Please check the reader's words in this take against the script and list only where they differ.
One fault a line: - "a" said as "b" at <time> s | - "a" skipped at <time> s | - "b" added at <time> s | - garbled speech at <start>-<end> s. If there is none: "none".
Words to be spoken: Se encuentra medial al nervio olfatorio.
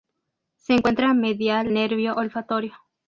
- "al" skipped at 1.7 s